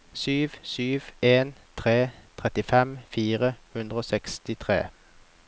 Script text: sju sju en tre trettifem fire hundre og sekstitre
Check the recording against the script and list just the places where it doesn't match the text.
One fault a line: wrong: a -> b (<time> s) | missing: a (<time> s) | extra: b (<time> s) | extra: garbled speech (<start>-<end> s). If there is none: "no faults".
no faults